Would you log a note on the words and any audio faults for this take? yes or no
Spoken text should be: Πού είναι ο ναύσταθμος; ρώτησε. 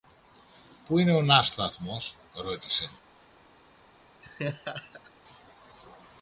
yes